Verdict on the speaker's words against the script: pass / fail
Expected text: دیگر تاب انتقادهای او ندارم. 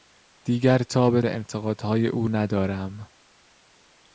pass